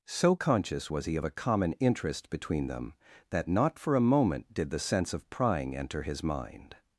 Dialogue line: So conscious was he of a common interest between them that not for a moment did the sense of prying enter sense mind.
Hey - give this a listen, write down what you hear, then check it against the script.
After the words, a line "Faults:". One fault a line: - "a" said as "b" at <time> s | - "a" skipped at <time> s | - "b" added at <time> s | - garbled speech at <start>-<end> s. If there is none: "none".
So conscious was he of a common interest between them that not for a moment did the sense of prying enter his mind.
Faults:
- "sense" said as "his" at 6.0 s